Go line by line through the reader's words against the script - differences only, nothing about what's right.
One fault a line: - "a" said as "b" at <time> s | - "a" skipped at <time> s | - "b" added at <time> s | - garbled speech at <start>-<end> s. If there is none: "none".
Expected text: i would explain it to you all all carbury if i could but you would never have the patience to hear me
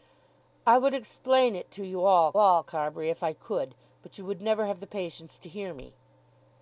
none